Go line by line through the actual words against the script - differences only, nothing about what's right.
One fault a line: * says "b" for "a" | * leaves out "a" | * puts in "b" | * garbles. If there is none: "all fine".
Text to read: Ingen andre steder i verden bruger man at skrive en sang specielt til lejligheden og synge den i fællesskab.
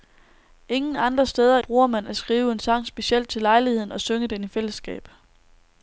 * leaves out "i verden"